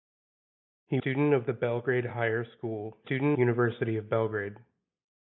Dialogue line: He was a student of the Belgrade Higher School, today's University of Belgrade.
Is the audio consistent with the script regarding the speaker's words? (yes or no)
no